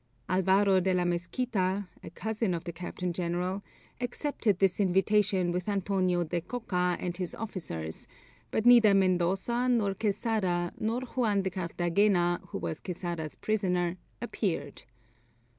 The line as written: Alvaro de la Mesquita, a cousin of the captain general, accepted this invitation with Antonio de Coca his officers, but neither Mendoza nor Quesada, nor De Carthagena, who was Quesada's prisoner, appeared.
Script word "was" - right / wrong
right